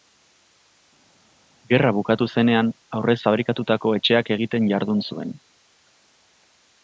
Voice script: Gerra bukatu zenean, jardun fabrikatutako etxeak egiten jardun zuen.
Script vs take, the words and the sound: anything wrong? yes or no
yes